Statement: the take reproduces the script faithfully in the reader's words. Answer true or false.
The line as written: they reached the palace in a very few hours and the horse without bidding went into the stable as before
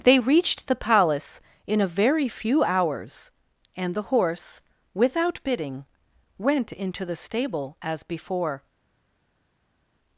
true